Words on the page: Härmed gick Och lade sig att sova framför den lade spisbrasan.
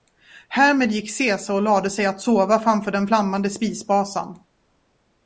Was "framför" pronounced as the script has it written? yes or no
yes